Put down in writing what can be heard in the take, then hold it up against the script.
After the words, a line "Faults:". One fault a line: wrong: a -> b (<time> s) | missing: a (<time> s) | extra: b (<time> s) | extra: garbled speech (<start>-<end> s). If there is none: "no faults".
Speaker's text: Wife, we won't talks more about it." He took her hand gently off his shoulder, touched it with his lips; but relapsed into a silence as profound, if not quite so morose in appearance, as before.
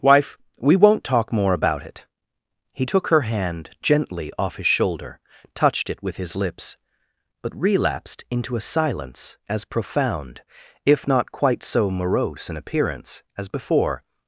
Wife, we won't talk more about it." He took her hand gently off his shoulder, touched it with his lips; but relapsed into a silence as profound, if not quite so morose in appearance, as before.
Faults:
wrong: talks -> talk (1.0 s)